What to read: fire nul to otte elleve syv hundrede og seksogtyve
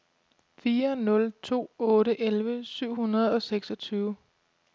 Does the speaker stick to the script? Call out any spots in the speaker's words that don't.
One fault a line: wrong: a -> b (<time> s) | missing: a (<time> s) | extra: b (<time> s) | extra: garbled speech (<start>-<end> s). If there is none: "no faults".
no faults